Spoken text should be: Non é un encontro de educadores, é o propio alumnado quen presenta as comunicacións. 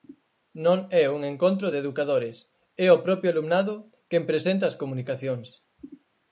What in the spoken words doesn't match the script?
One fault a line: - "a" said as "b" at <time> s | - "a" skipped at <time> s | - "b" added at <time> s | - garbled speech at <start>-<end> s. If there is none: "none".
none